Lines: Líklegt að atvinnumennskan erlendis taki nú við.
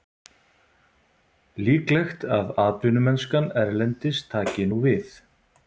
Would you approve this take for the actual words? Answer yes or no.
yes